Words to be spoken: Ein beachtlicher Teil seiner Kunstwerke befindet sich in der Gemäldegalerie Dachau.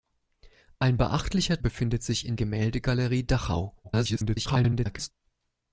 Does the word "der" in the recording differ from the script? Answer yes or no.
yes